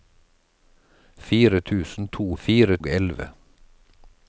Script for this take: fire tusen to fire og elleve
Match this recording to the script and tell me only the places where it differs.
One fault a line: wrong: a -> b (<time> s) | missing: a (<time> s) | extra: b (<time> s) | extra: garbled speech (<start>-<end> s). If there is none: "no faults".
no faults